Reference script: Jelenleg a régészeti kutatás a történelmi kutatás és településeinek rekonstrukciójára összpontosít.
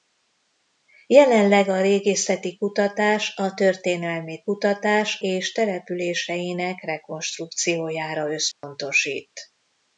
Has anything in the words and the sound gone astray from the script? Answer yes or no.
yes